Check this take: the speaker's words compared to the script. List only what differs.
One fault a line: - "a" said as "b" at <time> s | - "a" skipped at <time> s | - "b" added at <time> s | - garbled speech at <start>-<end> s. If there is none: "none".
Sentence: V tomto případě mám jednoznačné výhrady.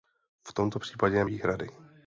- "mám jednoznačné" skipped at 1.2 s